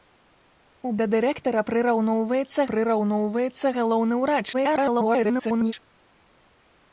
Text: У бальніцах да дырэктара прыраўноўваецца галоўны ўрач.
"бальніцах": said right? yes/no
no